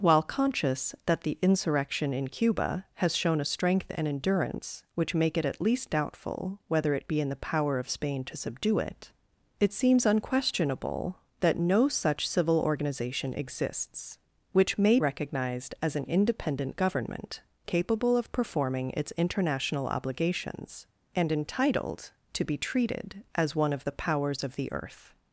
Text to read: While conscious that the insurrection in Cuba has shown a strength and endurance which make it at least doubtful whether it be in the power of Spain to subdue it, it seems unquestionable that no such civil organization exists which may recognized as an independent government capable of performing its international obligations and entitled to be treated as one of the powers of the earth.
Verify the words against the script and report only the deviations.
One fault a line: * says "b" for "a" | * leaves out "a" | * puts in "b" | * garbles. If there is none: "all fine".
all fine